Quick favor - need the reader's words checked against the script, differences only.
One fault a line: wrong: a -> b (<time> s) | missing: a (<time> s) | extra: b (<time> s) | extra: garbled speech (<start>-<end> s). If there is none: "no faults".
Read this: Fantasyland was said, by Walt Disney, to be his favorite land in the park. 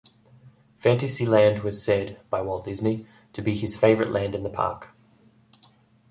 no faults